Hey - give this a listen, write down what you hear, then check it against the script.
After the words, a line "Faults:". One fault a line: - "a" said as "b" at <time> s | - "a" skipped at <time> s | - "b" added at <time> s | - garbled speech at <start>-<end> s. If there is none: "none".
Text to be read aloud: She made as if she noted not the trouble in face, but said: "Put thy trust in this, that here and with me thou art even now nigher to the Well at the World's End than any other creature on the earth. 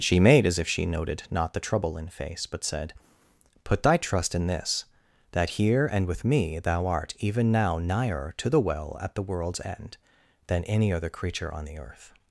She made as if she noted not the trouble in face, but said: "Put thy trust in this, that here and with me thou art even now nigher to the Well at the World's End than any other creature on the earth.
Faults:
none